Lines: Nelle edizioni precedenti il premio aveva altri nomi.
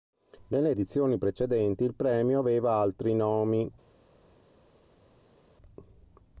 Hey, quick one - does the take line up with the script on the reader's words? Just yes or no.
yes